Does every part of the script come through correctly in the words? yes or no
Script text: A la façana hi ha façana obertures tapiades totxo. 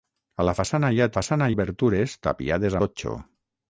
yes